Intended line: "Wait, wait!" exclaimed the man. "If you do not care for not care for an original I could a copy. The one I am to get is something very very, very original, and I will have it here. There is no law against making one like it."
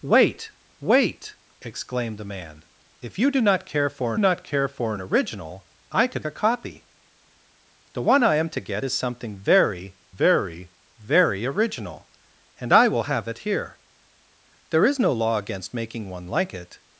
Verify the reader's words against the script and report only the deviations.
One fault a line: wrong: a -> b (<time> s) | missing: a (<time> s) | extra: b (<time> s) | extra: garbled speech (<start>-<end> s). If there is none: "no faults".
no faults